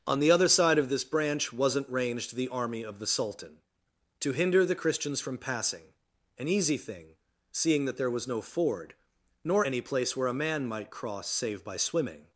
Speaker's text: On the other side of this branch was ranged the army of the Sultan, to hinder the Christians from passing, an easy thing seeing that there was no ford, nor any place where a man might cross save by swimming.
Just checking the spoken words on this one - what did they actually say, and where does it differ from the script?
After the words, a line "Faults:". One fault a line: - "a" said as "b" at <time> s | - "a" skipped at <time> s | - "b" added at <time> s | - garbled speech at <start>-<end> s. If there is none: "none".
On the other side of this branch wasn't ranged the army of the Sultan, to hinder the Christians from passing, an easy thing seeing that there was no ford, nor any place where a man might cross save by swimming.
Faults:
- "was" said as "wasn't" at 1.5 s